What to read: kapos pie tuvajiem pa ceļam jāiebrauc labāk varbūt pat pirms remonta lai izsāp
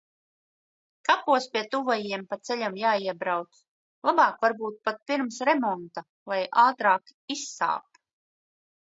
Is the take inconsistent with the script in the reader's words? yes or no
yes